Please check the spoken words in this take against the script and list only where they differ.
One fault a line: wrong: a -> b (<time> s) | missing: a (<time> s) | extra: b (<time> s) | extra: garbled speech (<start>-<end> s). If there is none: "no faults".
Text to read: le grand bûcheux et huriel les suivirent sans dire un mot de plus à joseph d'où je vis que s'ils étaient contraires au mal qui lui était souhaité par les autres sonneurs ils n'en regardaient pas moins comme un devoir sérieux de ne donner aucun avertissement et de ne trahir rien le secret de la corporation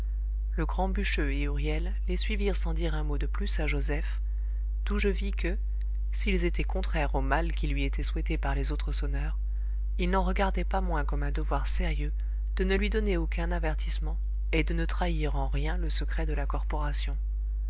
extra: lui (12.7 s)
extra: en (15.4 s)